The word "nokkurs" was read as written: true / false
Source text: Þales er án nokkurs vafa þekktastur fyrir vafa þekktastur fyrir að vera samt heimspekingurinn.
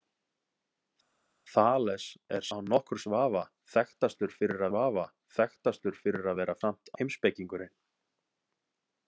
true